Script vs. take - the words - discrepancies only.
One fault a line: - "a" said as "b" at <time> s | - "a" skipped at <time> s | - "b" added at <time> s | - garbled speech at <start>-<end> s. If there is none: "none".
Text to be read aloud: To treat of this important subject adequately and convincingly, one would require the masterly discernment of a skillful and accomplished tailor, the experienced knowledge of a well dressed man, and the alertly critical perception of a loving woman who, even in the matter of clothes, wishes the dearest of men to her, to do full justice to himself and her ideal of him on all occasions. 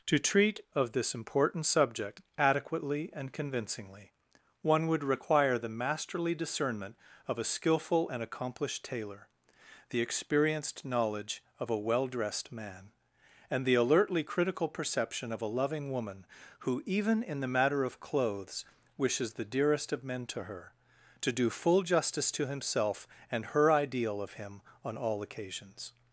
none